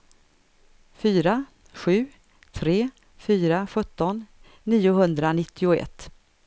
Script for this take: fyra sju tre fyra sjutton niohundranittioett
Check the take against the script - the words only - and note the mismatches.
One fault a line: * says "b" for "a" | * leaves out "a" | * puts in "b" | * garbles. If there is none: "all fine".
all fine